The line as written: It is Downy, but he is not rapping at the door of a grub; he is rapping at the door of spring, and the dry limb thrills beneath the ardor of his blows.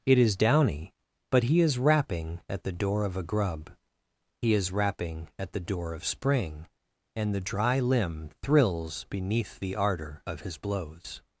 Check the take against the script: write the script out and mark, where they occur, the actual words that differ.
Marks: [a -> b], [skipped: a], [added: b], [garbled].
It is Downy, but he is [skipped: not] rapping at the door of a grub; he is rapping at the door of spring, and the dry limb thrills beneath the ardor of his blows.